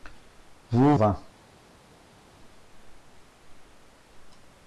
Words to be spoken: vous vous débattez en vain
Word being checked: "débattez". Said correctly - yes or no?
no